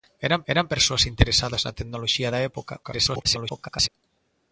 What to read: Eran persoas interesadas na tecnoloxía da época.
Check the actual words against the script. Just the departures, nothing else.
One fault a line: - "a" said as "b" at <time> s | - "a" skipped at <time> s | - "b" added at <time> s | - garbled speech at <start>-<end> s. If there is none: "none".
- "eran" added at 0.5 s
- garbled speech at 2.8-3.9 s